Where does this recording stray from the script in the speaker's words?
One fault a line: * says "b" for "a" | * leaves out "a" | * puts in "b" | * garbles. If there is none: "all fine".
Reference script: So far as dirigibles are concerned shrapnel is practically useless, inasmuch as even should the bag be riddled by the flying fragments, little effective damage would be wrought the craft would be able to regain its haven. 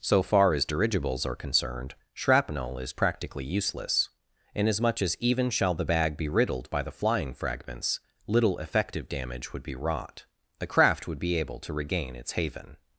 * says "shall" for "should"